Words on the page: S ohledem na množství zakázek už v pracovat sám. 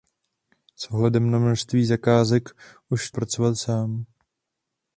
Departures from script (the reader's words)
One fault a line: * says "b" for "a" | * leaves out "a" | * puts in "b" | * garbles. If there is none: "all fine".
all fine